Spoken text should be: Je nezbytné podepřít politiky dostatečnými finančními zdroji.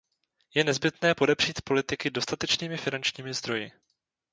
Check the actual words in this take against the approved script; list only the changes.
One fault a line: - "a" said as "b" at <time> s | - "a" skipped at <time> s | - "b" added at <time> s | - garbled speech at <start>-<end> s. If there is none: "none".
none